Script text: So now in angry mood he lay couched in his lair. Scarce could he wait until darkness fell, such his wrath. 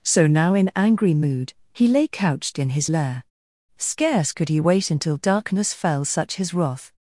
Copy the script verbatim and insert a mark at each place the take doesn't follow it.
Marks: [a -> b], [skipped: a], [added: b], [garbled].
So now in angry mood he lay couched in his lair. Scarce could he wait until darkness fell, such his wrath.